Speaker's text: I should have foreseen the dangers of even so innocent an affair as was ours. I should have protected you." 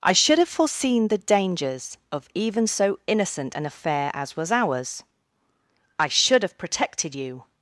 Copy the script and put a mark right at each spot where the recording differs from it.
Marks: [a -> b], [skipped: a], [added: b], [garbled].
I should have foreseen the dangers of even so innocent an affair as was ours. I should have protected you."